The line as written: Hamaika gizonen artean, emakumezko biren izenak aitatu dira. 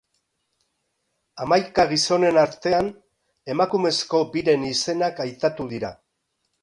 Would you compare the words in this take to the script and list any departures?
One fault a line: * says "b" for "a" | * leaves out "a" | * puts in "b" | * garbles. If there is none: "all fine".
all fine